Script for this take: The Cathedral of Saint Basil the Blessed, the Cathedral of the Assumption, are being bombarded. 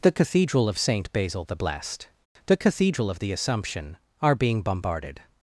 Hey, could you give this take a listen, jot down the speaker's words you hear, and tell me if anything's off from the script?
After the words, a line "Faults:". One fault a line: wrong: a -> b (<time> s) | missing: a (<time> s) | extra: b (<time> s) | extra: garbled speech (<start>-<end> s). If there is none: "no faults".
The Cathedral of Saint Basil the Blessed, the Cathedral of the Assumption, are being bombarded.
Faults:
no faults